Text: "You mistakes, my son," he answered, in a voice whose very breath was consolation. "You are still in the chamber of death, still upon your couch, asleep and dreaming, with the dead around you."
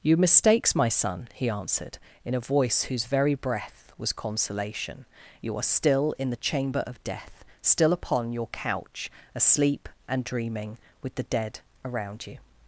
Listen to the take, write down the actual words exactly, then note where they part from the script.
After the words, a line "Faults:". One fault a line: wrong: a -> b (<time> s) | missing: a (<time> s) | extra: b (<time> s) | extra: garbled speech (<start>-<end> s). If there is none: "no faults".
"You mistakes, my son," he answered, in a voice whose very breath was consolation. "You are still in the chamber of death, still upon your couch, asleep and dreaming, with the dead around you."
Faults:
no faults